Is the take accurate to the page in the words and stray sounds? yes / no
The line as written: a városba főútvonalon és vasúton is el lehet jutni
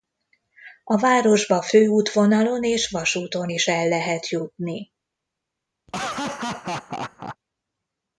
no